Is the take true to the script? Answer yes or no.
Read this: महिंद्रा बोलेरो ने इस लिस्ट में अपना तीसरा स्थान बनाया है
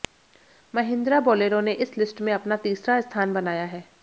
yes